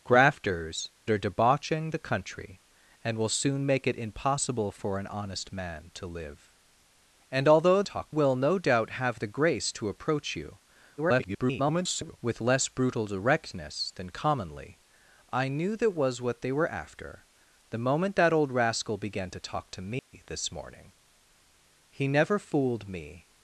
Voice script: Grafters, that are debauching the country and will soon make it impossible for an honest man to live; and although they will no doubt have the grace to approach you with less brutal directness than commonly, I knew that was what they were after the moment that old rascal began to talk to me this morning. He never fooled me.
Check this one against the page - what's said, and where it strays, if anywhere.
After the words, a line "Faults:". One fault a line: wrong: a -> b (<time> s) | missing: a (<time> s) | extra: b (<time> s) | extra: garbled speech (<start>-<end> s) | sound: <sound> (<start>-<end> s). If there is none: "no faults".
Grafters, are debauching the country and will soon make it impossible for an honest man to live; and although talk will no doubt have the grace to approach you [garbled] with less brutal directness than commonly, I knew that was what they were after the moment that old rascal began to talk to me this morning. He never fooled me.
Faults:
missing: that (0.9 s)
wrong: they -> talk (7.8 s)
extra: garbled speech (11.0-12.2 s)
sound: dropout (20.0-20.1 s)